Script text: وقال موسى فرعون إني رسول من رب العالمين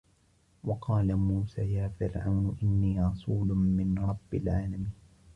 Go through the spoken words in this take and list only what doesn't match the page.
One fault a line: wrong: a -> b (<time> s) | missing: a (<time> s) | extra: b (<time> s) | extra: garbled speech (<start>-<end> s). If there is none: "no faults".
extra: يا (1.7 s)